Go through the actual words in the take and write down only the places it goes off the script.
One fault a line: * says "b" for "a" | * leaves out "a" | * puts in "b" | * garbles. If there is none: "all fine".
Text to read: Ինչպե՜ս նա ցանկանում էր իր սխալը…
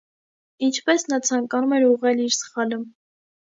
* puts in "ուղղել"